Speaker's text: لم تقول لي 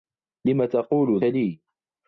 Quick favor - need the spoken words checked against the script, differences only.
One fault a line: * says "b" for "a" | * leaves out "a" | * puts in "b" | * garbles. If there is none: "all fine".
all fine